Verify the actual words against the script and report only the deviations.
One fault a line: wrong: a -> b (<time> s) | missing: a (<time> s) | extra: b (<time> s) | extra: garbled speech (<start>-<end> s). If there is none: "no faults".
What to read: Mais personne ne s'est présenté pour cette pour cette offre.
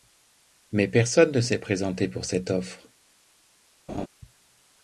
missing: pour cette (2.5 s)